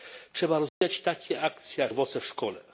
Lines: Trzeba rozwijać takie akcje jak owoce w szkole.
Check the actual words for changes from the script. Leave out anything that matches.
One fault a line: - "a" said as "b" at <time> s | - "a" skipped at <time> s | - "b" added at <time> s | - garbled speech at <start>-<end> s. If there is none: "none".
none